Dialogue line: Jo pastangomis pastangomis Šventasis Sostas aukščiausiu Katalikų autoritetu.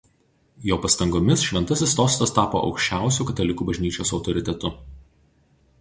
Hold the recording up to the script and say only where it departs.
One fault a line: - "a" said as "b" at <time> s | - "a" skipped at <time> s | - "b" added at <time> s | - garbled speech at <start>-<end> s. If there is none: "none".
- "pastangomis" skipped at 1.4 s
- "tapo" added at 2.4 s
- "bažnyčios" added at 3.7 s